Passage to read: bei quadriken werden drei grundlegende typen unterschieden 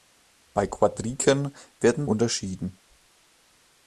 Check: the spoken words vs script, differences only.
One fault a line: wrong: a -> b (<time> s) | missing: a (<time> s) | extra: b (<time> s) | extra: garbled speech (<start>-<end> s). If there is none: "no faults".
missing: drei grundlegende typen (2.1 s)